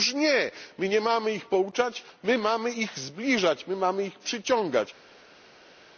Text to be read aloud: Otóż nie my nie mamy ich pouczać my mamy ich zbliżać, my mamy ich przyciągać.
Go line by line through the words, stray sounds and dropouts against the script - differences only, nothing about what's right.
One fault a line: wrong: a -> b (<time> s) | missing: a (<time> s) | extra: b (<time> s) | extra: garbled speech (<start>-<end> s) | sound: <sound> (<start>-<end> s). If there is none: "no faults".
no faults